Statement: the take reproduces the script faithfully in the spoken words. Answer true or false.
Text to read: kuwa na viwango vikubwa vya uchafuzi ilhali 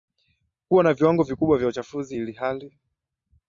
true